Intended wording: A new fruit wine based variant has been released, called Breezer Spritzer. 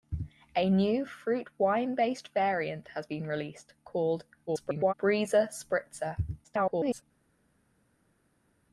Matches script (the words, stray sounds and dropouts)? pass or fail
fail